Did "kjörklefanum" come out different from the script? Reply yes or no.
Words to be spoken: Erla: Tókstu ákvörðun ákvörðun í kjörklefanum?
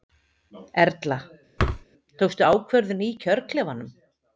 no